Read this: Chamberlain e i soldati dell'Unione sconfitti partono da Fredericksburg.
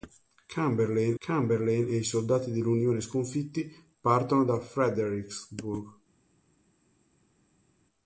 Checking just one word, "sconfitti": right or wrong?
right